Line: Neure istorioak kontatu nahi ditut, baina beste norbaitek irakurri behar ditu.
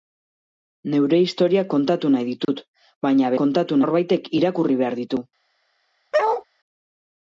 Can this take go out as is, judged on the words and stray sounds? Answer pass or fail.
fail